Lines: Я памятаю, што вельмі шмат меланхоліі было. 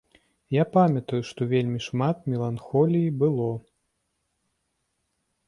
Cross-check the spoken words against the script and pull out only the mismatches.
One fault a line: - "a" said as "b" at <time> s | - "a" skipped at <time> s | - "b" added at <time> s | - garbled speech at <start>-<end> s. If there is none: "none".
none